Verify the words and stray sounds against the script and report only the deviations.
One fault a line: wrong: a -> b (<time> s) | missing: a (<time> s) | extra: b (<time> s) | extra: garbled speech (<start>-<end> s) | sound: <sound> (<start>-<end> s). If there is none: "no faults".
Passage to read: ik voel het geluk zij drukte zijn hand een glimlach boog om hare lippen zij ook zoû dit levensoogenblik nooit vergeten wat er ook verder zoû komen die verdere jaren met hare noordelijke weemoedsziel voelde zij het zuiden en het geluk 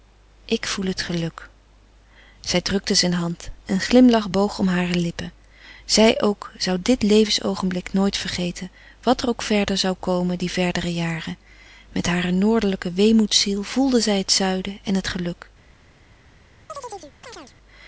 sound: chirp (16.7-17.5 s)